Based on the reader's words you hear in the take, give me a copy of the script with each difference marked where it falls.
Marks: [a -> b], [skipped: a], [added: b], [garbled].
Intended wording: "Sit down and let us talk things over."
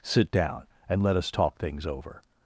"Sit down and let us talk things over."